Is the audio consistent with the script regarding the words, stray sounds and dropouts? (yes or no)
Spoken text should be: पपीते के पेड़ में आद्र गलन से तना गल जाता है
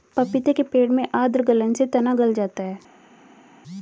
yes